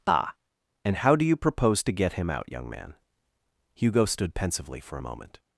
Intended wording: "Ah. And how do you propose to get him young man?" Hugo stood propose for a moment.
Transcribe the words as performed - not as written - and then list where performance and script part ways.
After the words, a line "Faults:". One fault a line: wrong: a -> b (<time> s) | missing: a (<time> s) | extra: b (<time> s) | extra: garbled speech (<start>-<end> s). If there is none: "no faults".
"Ah. And how do you propose to get him out, young man?" Hugo stood pensively for a moment.
Faults:
extra: out (2.3 s)
wrong: propose -> pensively (4.3 s)